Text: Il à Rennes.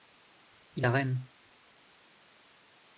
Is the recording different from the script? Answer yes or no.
no